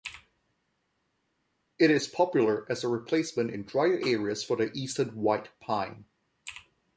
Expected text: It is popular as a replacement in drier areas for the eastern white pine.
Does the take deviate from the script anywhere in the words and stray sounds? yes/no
no